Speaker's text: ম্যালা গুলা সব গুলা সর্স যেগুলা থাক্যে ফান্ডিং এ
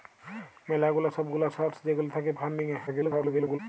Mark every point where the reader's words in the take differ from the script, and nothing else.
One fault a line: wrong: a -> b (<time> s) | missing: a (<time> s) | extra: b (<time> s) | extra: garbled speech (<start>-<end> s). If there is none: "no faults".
extra: garbled speech (2.9-3.6 s)